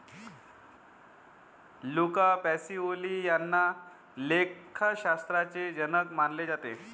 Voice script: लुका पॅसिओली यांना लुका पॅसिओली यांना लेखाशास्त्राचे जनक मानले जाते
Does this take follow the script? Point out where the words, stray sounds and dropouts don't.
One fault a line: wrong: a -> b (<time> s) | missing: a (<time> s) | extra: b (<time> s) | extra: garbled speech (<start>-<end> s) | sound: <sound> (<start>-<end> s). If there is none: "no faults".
missing: लुका पॅसिओली यांना (3.7 s)